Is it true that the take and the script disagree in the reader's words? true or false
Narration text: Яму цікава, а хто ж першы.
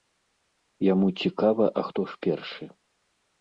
false